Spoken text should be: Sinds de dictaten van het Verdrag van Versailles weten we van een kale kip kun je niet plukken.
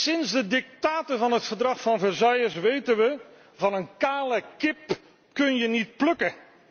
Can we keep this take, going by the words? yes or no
yes